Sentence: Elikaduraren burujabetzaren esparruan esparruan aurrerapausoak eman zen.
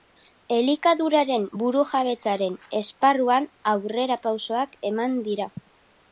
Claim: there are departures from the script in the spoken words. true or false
true